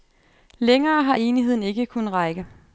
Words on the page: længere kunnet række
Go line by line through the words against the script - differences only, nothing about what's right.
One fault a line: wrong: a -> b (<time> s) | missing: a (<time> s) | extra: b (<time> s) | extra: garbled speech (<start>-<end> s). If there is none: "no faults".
extra: har enigheden ikke (1.0 s)